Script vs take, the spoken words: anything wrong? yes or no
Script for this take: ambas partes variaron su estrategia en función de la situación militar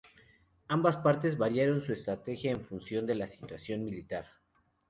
no